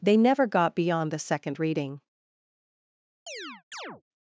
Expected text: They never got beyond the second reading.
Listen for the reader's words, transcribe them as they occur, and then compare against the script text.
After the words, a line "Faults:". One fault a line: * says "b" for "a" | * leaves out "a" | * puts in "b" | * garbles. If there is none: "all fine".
They never got beyond the second reading.
Faults:
all fine